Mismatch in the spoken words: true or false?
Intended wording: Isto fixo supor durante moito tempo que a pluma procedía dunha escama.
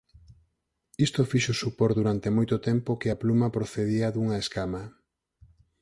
false